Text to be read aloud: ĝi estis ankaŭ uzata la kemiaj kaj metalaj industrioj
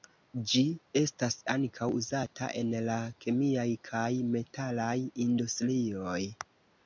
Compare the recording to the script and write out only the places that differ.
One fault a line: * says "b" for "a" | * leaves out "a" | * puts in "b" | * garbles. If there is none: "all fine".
* says "estas" for "estis"
* puts in "en"